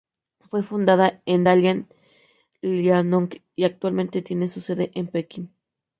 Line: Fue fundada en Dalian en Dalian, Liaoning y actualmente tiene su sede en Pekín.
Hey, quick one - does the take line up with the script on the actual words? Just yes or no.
no